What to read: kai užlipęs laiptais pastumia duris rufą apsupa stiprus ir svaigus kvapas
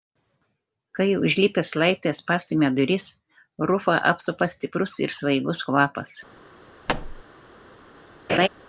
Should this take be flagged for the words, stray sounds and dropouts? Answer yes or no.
yes